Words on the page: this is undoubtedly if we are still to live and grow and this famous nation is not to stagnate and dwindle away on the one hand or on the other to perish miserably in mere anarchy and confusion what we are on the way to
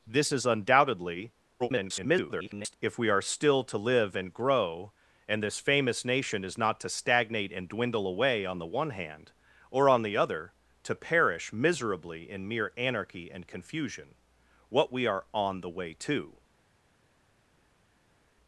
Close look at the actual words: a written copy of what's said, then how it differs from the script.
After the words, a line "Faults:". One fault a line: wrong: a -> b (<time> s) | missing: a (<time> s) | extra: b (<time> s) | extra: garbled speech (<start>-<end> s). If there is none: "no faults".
this is undoubtedly [garbled] if we are still to live and grow and this famous nation is not to stagnate and dwindle away on the one hand or on the other to perish miserably in mere anarchy and confusion what we are on the way to
Faults:
extra: garbled speech (1.6-2.7 s)